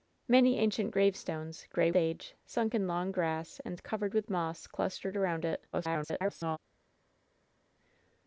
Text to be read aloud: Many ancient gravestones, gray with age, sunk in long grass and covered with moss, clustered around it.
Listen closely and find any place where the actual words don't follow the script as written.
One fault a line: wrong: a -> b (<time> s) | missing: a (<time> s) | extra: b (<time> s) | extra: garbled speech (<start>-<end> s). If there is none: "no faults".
missing: with (1.9 s)
extra: garbled speech (5.7-6.6 s)